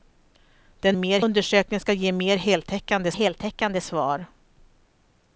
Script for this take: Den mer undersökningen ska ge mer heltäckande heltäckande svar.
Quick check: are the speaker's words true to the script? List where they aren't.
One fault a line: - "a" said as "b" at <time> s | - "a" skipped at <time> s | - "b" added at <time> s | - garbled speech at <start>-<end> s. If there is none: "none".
none